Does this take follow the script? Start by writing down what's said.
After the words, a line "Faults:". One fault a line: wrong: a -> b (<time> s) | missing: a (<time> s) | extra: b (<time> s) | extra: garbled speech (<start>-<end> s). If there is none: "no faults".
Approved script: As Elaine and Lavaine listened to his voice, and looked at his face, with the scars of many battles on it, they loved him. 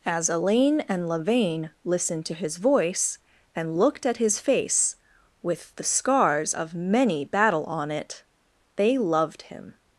As Elaine and Lavaine listened to his voice, and looked at his face, with the scars of many battle on it, they loved him.
Faults:
wrong: battles -> battle (7.2 s)